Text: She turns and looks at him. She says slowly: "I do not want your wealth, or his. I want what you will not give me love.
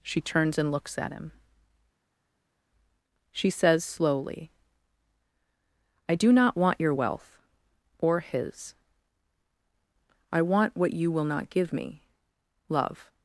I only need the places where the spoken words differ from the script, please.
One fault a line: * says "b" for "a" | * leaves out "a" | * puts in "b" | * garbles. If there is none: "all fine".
all fine